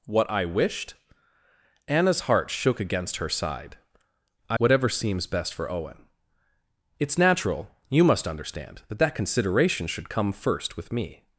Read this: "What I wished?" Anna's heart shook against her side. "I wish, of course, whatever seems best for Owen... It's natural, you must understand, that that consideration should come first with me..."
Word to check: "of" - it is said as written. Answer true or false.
false